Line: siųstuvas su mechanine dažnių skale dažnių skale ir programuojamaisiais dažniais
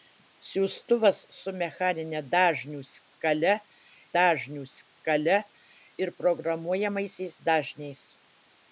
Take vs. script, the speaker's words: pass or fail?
pass